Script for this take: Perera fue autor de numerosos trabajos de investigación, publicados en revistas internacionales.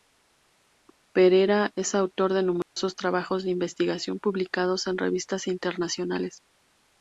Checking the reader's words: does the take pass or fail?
fail